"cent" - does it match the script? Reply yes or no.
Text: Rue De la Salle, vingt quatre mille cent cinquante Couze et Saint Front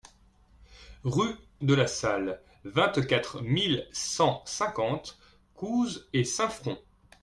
yes